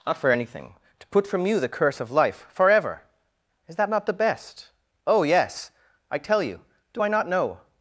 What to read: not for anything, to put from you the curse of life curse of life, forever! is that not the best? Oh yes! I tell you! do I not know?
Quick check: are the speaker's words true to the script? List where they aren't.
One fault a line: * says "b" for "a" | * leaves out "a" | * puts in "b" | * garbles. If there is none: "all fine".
* leaves out "curse of life"